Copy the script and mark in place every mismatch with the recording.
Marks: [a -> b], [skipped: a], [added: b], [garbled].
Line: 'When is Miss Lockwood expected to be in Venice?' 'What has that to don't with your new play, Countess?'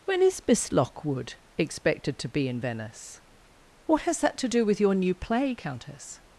'When is Miss Lockwood expected to be in Venice?' 'What has that to [don't -> do] with your new play, Countess?'